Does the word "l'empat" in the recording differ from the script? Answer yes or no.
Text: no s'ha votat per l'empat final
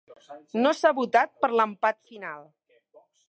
no